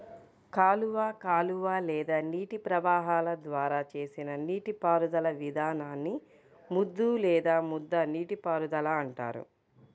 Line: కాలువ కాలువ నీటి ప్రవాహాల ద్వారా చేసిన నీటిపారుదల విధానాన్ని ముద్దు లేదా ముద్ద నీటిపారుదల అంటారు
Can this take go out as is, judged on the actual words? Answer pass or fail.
fail